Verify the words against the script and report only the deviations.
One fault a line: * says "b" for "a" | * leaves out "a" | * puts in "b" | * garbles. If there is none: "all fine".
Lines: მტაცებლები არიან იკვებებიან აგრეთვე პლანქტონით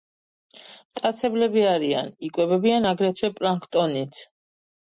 all fine